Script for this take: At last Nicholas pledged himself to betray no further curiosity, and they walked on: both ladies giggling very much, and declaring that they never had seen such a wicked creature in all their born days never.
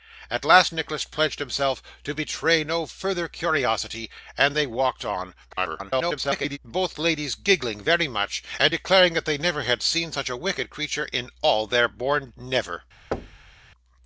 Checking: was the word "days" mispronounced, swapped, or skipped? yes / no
yes